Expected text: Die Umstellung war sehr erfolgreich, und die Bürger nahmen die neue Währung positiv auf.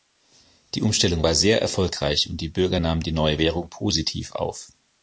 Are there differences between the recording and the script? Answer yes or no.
no